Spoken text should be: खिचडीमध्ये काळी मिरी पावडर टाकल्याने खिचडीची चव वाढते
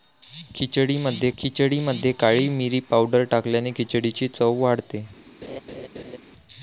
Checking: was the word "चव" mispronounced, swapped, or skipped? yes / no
no